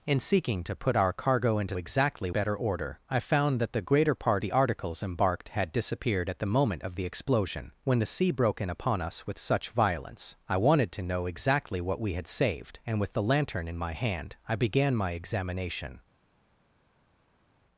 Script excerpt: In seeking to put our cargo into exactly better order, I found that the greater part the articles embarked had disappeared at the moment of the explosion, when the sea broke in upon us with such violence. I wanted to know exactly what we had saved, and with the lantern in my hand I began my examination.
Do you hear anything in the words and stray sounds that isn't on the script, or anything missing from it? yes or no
no